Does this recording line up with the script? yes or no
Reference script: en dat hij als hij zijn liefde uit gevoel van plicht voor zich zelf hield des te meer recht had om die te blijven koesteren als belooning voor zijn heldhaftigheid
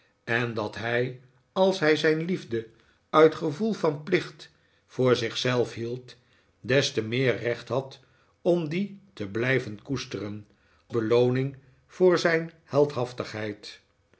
no